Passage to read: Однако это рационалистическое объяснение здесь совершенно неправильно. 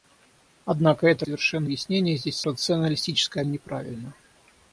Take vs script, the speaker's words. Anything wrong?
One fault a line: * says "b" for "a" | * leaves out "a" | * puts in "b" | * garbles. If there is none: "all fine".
* says "совершенно" for "рационалистическое"
* says "рационалистическое" for "совершенно"